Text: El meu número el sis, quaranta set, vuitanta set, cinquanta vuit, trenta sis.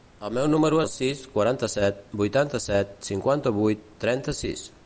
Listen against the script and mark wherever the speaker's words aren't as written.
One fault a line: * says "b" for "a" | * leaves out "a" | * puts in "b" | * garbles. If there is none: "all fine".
all fine